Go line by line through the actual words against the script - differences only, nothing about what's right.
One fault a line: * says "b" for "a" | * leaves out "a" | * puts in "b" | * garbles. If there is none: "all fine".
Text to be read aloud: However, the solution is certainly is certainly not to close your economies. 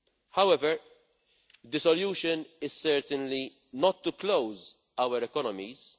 * leaves out "is certainly"
* says "our" for "your"